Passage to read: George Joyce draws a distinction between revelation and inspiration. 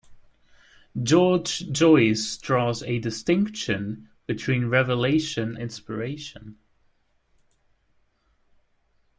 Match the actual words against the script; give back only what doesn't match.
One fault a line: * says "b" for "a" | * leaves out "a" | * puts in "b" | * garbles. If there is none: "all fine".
* leaves out "and"